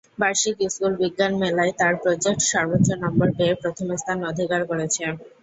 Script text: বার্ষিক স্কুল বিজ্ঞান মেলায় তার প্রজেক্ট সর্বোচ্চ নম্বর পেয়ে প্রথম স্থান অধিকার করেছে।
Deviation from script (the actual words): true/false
false